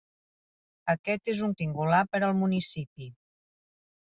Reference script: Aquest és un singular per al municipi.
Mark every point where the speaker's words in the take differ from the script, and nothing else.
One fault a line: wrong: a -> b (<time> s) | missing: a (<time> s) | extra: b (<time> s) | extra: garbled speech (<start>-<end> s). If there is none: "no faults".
no faults